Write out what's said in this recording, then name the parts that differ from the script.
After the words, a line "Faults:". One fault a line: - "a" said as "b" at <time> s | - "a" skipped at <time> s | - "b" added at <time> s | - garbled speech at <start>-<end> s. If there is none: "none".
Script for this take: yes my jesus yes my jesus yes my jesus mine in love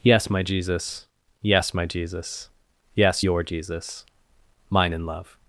yes my jesus yes my jesus yes your jesus mine in love
Faults:
- "my" said as "your" at 3.2 s